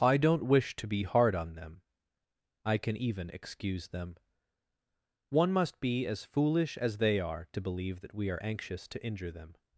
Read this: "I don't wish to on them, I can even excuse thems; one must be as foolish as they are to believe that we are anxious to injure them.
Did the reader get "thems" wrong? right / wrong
wrong